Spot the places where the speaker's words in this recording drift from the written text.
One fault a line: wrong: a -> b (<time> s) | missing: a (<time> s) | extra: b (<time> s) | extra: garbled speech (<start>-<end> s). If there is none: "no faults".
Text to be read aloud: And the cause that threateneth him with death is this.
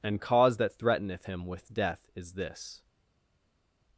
missing: the (0.2 s)